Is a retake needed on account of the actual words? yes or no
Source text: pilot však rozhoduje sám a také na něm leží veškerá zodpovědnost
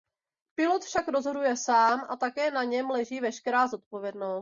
no